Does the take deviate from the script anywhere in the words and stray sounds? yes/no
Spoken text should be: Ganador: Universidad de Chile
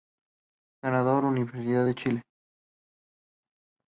no